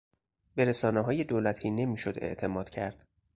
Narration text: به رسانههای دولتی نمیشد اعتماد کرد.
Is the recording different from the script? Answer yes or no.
no